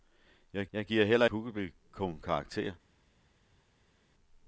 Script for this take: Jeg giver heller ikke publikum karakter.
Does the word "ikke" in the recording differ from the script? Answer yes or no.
yes